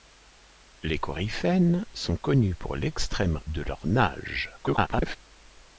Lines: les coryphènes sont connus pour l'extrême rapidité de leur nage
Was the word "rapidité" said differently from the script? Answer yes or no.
yes